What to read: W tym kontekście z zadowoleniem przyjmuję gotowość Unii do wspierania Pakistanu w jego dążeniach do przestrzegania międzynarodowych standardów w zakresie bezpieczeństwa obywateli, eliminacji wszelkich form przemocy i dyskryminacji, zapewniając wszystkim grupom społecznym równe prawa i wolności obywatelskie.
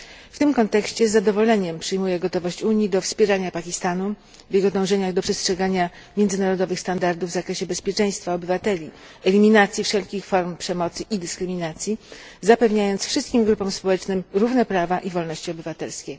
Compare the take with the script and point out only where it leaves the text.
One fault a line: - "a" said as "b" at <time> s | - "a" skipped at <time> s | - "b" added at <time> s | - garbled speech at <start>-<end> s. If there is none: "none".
none